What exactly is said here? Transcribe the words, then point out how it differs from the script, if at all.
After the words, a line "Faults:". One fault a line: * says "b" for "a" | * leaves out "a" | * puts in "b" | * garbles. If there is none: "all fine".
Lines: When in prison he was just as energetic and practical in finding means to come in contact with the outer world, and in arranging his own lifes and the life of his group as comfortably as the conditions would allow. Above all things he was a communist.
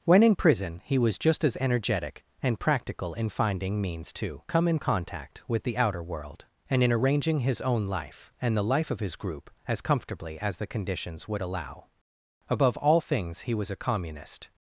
When in prison he was just as energetic and practical in finding means to come in contact with the outer world, and in arranging his own life and the life of his group as comfortably as the conditions would allow. Above all things he was a communist.
Faults:
* says "life" for "lifes"